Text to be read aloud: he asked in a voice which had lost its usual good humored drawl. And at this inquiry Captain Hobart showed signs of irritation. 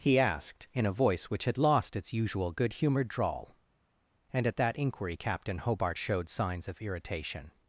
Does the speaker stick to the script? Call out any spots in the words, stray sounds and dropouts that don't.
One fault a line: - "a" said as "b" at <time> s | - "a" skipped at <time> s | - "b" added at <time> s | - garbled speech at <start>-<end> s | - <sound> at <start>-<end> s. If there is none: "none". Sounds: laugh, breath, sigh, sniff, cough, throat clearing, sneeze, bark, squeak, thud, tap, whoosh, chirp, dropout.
- "this" said as "that" at 4.6 s